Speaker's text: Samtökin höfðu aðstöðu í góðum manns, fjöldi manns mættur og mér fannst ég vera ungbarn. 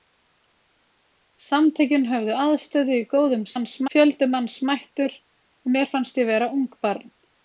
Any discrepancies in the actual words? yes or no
no